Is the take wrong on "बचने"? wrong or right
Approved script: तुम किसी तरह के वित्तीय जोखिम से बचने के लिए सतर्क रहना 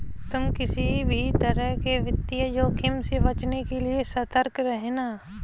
right